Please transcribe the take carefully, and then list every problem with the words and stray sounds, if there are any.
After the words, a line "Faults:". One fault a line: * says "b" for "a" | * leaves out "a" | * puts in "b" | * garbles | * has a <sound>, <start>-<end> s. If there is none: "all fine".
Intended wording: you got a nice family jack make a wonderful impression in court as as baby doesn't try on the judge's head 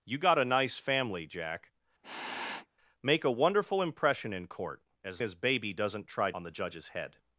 you got a nice family jack make a wonderful impression in court as as baby doesn't try on the judge's head
Faults:
* has a sniff, 2.0-2.7 s